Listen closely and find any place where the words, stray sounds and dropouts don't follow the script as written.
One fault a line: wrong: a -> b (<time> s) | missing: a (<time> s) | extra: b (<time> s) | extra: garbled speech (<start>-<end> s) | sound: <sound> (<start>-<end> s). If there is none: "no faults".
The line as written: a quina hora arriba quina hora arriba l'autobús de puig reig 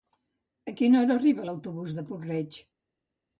missing: quina hora arriba (1.5 s)